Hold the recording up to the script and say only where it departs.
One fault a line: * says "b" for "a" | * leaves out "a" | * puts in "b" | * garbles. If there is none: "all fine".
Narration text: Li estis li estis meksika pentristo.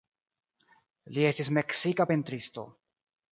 * leaves out "li estis"